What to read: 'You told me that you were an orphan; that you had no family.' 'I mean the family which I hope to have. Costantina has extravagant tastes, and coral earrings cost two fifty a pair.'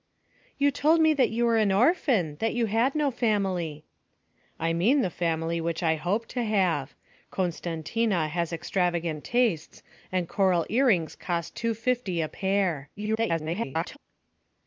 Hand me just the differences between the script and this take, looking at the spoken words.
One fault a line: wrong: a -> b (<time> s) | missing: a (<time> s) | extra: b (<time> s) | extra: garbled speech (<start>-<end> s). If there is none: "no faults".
extra: garbled speech (13.0-14.0 s)